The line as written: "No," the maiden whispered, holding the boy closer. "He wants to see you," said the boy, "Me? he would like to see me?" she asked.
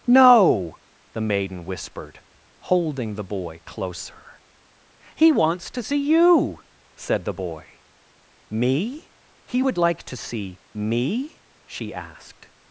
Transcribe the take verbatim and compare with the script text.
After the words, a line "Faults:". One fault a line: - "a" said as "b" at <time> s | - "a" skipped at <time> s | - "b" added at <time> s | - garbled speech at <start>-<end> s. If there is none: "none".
"No," the maiden whispered, holding the boy closer. "He wants to see you," said the boy, "Me? he would like to see me?" she asked.
Faults:
none